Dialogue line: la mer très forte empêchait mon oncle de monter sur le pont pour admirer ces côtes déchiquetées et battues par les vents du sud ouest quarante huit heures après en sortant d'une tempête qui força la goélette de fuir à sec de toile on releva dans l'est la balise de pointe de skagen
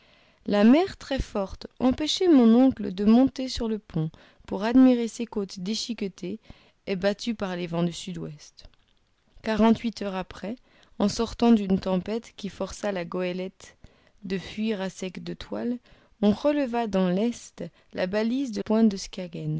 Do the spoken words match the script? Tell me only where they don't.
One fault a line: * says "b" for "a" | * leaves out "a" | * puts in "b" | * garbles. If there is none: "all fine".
all fine